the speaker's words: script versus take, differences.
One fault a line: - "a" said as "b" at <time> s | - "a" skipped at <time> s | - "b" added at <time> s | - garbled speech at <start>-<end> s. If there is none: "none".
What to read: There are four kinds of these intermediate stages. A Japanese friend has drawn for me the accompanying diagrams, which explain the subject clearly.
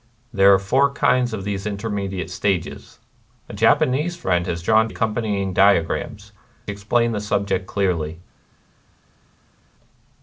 - "for me the" skipped at 4.9 s
- "which" skipped at 6.3 s